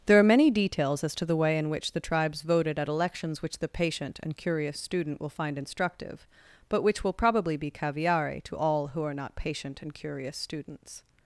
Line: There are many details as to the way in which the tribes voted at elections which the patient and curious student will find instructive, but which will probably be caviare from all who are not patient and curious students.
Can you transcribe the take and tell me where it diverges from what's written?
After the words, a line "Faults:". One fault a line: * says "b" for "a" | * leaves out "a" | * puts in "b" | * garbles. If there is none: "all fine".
There are many details as to the way in which the tribes voted at elections which the patient and curious student will find instructive, but which will probably be caviare to all who are not patient and curious students.
Faults:
* says "to" for "from"